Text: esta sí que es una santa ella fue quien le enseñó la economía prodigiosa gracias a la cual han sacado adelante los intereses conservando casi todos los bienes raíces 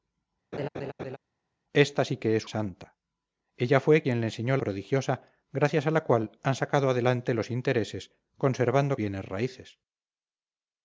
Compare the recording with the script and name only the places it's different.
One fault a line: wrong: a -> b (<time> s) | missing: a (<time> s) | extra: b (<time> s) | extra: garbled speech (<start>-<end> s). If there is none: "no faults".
missing: una (2.5 s)
missing: la economía (4.6 s)
missing: casi todos los (9.0 s)